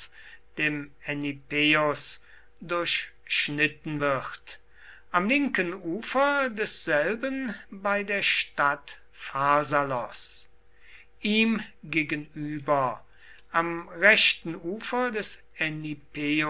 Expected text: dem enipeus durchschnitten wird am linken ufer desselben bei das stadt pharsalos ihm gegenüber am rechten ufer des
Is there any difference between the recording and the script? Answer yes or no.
yes